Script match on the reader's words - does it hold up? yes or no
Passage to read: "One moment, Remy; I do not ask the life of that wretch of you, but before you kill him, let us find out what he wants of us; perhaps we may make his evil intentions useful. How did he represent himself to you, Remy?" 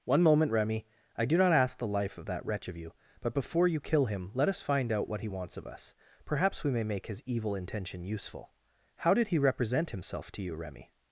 no